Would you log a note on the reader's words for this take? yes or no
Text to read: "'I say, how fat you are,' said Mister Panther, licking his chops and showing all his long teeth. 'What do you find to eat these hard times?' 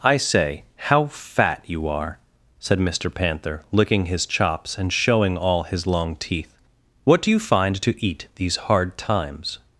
no